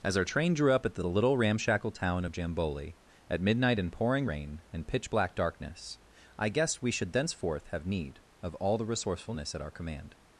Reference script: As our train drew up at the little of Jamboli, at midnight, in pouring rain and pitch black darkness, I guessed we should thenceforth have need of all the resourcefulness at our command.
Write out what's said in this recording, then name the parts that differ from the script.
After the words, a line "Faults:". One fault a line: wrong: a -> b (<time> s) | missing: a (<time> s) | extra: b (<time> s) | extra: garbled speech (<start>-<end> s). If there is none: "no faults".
As our train drew up at the little ramshackle town of Jamboli, at midnight, in pouring rain and pitch black darkness, I guessed we should thenceforth have need of all the resourcefulness at our command.
Faults:
extra: ramshackle town (1.4 s)